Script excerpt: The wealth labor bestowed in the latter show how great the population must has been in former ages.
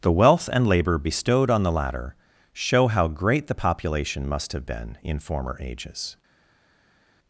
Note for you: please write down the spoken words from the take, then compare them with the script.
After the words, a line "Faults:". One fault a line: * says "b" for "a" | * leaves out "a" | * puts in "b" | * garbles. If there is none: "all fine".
The wealth and labor bestowed on the latter show how great the population must have been in former ages.
Faults:
* puts in "and"
* says "on" for "in"
* says "have" for "has"